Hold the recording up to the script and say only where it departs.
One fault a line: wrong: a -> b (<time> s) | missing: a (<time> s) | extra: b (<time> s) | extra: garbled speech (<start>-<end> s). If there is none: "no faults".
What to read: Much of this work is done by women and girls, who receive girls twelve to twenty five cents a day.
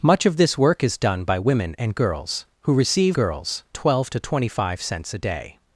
no faults